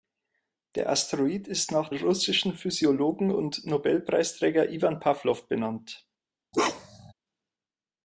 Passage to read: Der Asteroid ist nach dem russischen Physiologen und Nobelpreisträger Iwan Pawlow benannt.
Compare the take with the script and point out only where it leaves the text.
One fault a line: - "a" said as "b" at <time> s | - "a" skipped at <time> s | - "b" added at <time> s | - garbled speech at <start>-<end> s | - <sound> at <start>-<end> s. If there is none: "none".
- "dem" skipped at 1.9 s
- bark at 6.5-7.1 s